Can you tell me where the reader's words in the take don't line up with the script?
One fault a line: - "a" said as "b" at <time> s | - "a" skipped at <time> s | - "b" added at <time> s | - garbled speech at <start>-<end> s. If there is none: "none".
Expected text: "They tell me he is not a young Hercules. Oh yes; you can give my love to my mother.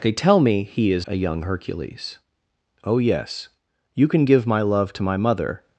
- "not" skipped at 1.1 s